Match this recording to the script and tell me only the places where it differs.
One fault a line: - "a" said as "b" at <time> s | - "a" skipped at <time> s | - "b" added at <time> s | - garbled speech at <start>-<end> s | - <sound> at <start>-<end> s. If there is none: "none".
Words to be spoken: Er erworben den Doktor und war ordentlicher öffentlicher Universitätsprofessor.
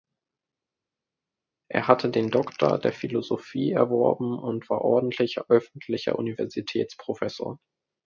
- "erworben" said as "hatte" at 1.9 s
- "der Philosophie erworben" added at 2.8 s